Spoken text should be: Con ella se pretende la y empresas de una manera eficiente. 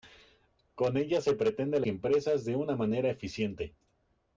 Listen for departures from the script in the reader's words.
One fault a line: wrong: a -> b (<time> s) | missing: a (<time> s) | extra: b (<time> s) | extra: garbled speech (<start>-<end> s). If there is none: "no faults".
no faults